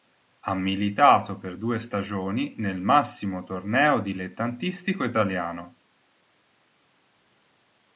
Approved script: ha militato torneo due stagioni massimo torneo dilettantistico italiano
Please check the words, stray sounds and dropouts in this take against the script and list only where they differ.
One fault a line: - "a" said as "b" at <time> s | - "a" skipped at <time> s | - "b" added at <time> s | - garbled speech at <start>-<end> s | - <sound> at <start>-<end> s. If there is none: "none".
- "torneo" said as "per" at 1.4 s
- "nel" added at 2.6 s